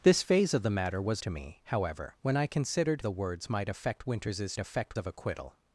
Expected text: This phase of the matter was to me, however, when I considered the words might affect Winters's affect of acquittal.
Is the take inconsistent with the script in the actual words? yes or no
no